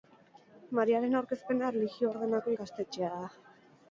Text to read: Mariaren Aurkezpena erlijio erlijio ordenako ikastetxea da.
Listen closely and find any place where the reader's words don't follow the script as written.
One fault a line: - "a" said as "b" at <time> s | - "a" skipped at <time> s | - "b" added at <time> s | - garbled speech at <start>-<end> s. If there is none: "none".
- "erlijio" skipped at 2.1 s